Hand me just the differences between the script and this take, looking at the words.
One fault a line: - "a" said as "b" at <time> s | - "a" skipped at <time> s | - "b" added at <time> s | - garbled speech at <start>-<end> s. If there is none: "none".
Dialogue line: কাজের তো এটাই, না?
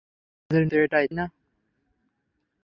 none